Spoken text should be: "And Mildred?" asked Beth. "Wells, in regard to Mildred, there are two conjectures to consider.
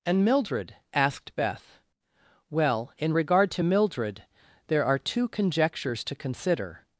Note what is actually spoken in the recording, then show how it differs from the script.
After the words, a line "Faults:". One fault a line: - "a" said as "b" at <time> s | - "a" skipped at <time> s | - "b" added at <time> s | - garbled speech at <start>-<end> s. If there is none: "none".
"And Mildred?" asked Beth. "Well, in regard to Mildred, there are two conjectures to consider.
Faults:
- "Wells" said as "Well" at 2.5 s